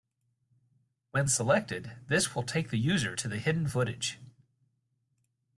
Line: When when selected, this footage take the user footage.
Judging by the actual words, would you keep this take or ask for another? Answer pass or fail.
fail